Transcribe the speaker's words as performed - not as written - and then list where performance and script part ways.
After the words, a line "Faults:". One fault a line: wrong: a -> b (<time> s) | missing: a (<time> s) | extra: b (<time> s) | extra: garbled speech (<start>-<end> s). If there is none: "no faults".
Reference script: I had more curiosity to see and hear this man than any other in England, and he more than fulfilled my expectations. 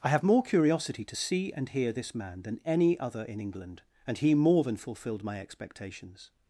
I have more curiosity to see and hear this man than any other in England, and he more than fulfilled my expectations.
Faults:
wrong: had -> have (0.1 s)